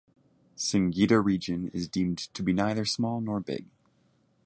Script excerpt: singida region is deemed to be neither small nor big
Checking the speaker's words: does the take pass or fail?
pass